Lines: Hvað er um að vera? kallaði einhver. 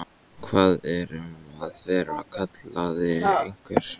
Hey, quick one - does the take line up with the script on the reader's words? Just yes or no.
yes